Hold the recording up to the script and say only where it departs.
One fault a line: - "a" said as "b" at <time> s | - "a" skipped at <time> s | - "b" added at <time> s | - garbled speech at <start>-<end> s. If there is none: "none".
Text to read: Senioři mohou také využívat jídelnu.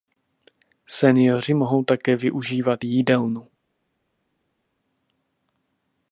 none